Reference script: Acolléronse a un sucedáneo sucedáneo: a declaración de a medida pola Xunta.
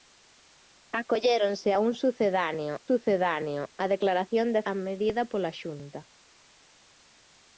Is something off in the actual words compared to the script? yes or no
no